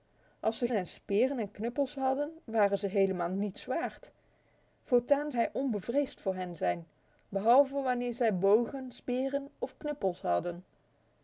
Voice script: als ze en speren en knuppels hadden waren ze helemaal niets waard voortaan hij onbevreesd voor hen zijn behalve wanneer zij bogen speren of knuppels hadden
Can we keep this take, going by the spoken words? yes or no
yes